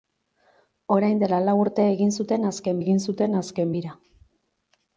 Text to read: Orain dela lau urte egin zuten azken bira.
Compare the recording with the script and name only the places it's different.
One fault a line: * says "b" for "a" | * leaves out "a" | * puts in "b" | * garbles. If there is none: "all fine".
* puts in "egin zuten azken"